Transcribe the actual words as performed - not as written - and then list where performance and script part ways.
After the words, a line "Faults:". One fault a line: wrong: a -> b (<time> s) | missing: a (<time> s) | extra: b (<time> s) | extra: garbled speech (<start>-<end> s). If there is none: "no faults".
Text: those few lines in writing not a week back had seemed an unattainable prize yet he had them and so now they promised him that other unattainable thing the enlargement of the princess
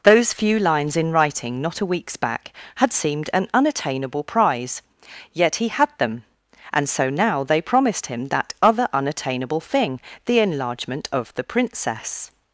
those few lines in writing not a weeks back had seemed an unattainable prize yet he had them and so now they promised him that other unattainable thing the enlargement of the princess
Faults:
wrong: week -> weeks (1.9 s)